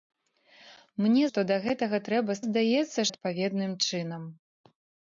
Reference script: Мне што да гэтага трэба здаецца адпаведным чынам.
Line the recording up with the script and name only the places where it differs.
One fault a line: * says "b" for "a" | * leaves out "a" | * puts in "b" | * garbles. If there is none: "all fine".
all fine